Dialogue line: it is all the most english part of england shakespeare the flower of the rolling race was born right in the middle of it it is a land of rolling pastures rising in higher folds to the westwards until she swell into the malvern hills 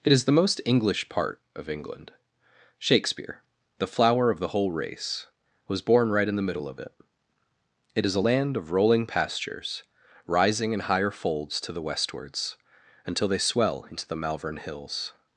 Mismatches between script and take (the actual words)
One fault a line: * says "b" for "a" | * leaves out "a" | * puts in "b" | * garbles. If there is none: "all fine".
* leaves out "all"
* says "whole" for "rolling"
* says "they" for "she"